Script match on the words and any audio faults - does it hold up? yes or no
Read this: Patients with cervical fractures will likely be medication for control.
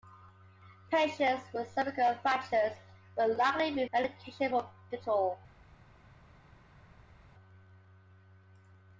yes